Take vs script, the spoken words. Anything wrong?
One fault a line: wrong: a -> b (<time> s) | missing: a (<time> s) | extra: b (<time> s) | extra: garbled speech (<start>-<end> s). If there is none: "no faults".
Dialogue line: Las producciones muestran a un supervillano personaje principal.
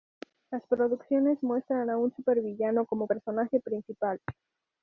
extra: como (2.9 s)